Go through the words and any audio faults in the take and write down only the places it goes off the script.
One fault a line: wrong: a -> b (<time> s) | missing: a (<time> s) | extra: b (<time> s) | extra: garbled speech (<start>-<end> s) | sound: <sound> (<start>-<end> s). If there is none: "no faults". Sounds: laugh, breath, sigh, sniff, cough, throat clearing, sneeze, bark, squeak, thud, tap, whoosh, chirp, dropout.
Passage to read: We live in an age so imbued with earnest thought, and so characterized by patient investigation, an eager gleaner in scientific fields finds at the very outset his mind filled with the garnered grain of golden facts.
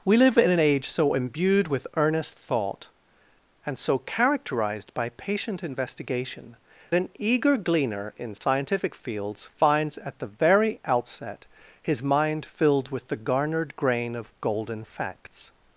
sound: dropout (8.4-8.4 s)